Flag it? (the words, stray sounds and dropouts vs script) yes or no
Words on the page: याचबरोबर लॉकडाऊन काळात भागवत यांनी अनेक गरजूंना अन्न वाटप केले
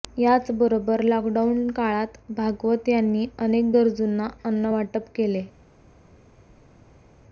no